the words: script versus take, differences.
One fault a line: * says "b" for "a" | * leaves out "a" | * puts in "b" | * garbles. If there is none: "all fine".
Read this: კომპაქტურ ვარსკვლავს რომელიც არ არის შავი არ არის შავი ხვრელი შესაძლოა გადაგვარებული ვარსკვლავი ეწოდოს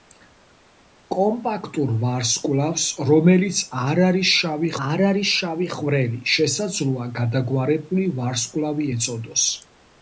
all fine